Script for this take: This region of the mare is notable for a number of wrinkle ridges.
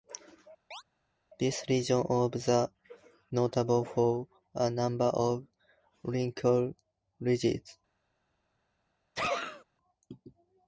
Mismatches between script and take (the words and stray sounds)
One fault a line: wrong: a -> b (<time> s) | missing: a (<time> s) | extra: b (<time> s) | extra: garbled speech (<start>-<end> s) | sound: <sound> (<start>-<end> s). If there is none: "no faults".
sound: chirp (0.7-0.8 s)
missing: mare is (2.7 s)
sound: sneeze (9.2-9.6 s)